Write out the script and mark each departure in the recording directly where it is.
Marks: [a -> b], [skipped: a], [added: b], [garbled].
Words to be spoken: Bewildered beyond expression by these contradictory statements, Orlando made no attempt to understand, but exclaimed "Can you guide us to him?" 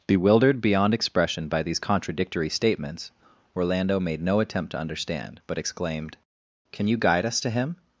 Bewildered beyond expression by these contradictory statements, Orlando made no attempt to understand, but exclaimed "Can you guide us to him?"